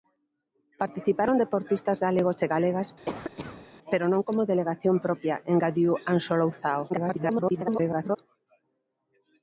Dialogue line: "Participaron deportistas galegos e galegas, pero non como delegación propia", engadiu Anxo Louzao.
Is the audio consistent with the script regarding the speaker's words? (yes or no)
no